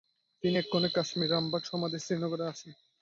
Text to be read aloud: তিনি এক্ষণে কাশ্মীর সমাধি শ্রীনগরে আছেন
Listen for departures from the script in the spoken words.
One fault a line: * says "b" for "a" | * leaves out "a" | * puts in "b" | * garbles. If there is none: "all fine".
* puts in "রামবাগ"